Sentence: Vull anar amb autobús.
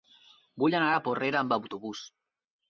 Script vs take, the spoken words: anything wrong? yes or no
yes